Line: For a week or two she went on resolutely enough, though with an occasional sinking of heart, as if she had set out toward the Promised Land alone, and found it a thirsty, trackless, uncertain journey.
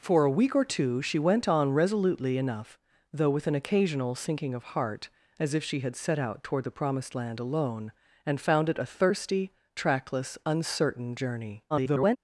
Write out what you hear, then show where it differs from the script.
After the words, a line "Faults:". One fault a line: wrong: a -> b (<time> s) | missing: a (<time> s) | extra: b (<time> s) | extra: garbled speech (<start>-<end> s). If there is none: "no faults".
For a week or two she went on resolutely enough, though with an occasional sinking of heart, as if she had set out toward the Promised Land alone, and found it a thirsty, trackless, uncertain journey. [garbled]
Faults:
extra: garbled speech (11.7-12.2 s)